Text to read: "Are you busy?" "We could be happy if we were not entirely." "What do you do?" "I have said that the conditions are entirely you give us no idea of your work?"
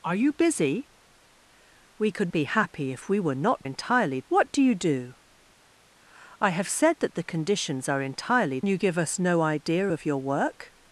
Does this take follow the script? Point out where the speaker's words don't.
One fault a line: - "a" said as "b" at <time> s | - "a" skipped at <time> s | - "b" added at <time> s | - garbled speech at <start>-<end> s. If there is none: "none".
none